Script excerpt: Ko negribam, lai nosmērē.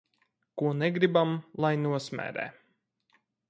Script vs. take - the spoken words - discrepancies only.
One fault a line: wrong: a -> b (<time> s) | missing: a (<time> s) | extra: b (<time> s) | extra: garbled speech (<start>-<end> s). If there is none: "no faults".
no faults